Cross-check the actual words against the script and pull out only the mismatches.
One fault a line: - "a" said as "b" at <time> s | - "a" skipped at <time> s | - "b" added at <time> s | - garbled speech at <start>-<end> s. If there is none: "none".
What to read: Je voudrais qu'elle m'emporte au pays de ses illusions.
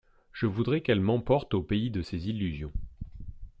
none